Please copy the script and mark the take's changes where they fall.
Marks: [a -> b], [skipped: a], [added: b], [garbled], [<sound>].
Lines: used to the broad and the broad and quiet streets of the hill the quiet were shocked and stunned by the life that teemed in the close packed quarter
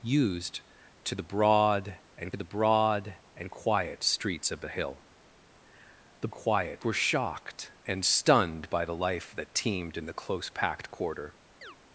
used to the broad and the broad and quiet streets of the hill the quiet were shocked and stunned by the life that teemed in the close packed quarter [chirp]